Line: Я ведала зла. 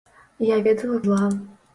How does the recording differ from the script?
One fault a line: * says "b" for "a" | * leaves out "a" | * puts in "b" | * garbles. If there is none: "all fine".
all fine